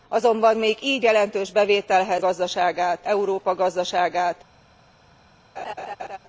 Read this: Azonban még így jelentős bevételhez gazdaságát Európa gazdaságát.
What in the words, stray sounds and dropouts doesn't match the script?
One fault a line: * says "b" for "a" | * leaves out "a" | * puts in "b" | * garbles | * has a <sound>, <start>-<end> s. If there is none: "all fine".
* has a laugh, 5.6-6.2 s